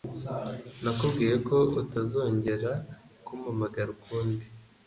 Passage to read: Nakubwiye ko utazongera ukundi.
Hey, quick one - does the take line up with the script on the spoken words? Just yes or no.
no